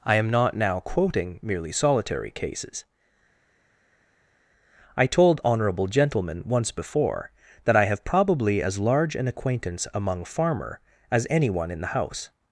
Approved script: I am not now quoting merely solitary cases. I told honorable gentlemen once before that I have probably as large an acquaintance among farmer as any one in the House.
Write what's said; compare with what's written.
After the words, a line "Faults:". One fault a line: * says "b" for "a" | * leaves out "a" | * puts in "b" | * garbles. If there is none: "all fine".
I am not now quoting merely solitary cases. I told honorable gentlemen once before that I have probably as large an acquaintance among farmer as any one in the House.
Faults:
all fine